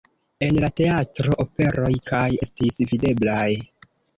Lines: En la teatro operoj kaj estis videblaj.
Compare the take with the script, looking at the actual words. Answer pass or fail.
pass